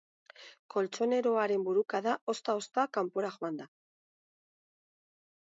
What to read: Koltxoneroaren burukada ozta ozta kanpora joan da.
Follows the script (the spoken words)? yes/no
yes